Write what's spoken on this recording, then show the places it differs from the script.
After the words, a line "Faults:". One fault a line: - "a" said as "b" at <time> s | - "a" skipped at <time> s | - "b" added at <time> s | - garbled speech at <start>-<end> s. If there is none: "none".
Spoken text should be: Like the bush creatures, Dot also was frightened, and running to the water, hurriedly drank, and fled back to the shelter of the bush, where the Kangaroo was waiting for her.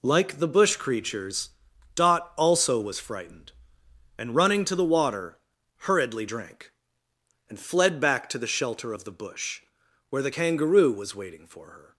Like the bush creatures, Dot also was frightened, and running to the water, hurriedly drank, and fled back to the shelter of the bush, where the Kangaroo was waiting for her.
Faults:
none